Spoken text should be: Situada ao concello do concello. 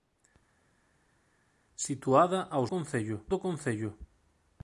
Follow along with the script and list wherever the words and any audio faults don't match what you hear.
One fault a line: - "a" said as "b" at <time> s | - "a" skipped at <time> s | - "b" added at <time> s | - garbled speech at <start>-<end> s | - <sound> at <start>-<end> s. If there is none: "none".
none